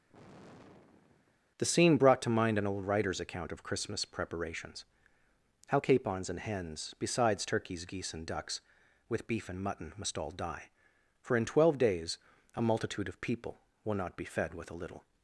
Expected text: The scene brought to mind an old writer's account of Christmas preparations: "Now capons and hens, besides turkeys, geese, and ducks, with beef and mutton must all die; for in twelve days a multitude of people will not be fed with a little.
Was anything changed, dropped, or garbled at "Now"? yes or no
yes